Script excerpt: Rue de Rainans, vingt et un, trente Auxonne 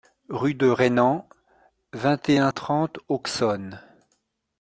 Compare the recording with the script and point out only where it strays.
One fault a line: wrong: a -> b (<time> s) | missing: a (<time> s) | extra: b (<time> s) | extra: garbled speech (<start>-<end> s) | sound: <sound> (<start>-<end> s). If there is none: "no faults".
no faults